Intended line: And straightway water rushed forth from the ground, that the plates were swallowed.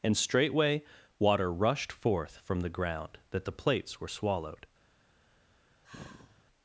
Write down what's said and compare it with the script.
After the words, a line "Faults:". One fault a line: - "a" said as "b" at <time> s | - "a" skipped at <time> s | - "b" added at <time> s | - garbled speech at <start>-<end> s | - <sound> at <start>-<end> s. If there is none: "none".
And straightway water rushed forth from the ground, that the plates were swallowed.
Faults:
- sigh at 5.8-6.4 s